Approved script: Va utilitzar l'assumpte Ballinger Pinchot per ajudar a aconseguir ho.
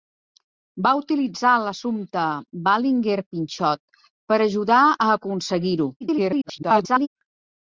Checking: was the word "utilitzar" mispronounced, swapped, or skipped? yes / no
no